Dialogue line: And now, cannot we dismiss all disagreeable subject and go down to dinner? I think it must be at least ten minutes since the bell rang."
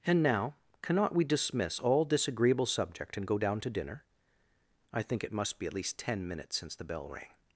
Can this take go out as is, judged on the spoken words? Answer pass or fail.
pass